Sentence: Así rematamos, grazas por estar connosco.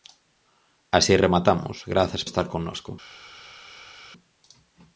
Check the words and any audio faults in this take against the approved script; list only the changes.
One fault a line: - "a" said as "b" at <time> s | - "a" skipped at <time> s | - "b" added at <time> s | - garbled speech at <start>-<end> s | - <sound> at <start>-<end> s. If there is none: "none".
- "por" skipped at 2.2 s